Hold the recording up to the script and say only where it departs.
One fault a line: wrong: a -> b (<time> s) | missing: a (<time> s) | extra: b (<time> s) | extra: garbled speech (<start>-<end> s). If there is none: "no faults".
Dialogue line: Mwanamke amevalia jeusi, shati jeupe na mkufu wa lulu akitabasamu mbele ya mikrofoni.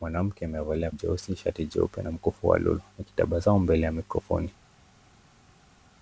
no faults